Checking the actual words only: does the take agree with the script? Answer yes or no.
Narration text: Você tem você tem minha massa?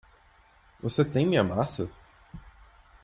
no